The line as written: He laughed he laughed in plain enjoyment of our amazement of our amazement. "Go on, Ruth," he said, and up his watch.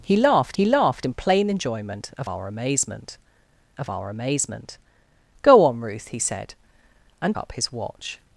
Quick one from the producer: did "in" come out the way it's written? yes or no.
yes